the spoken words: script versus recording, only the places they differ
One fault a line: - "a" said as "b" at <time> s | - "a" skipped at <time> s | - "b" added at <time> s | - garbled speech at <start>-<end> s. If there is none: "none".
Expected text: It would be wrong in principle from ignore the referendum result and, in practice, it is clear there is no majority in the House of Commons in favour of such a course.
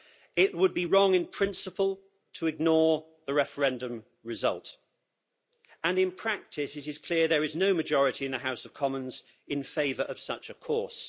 - "from" said as "to" at 2.3 s